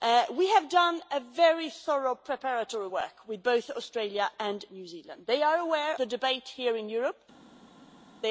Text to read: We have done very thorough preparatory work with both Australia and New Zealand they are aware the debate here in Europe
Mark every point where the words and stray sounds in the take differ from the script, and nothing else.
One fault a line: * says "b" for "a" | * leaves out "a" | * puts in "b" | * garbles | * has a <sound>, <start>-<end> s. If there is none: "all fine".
all fine